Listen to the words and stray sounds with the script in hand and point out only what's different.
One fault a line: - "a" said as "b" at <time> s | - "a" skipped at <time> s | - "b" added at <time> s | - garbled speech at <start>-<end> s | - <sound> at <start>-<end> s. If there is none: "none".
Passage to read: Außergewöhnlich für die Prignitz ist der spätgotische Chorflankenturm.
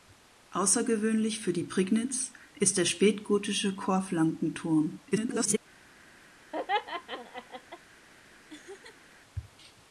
- garbled speech at 5.1-5.6 s
- laugh at 6.5-7.8 s
- laugh at 8.5-9.1 s